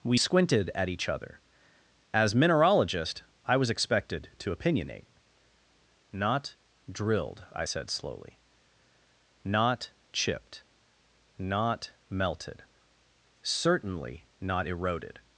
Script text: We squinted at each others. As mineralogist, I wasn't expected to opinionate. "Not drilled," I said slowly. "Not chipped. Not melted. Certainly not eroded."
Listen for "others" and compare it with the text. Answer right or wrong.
wrong